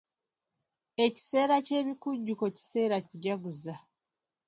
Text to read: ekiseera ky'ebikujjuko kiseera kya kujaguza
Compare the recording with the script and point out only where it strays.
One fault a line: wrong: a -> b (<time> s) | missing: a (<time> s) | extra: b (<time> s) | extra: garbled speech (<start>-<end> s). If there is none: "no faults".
missing: kya (3.0 s)